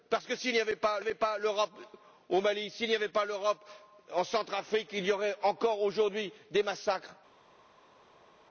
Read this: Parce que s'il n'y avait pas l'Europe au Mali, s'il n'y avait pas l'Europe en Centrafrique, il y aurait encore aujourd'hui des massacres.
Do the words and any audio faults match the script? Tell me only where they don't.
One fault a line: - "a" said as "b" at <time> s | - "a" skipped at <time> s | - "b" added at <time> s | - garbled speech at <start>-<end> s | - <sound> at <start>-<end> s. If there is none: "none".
- "avait pas" added at 1.0 s